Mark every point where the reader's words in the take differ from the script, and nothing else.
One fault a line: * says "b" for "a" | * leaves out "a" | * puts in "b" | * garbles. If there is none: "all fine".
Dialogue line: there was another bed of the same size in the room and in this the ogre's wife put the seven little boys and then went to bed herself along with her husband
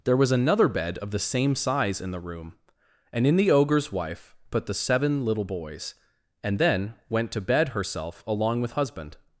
* leaves out "this"
* leaves out "her"